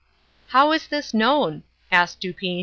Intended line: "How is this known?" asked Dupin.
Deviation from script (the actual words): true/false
false